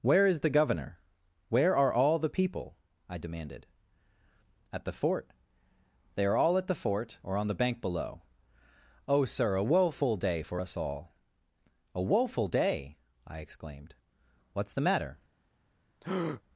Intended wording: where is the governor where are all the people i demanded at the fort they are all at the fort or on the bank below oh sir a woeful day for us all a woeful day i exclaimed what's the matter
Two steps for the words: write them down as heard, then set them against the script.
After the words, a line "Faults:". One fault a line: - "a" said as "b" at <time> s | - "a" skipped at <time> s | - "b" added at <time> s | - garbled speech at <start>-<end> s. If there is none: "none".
where is the governor where are all the people i demanded at the fort they are all at the fort or on the bank below oh sir a woeful day for us all a woeful day i exclaimed what's the matter
Faults:
none